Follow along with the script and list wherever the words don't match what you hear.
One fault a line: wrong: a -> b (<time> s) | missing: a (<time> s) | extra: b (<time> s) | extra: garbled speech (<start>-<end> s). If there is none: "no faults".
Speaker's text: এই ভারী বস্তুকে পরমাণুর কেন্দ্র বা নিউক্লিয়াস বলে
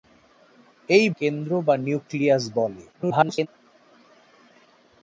missing: ভারী বস্তুকে পরমাণুর (1.1 s)
extra: garbled speech (2.9-3.5 s)